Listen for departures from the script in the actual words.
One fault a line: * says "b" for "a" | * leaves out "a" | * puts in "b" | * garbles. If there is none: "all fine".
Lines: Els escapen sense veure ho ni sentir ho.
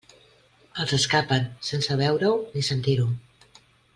all fine